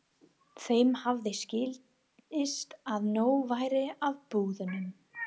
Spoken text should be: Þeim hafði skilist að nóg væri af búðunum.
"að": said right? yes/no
yes